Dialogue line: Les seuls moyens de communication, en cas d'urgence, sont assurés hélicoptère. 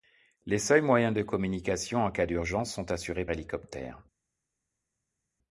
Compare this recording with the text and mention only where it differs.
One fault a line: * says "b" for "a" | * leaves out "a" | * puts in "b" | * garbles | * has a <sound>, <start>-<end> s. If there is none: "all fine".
all fine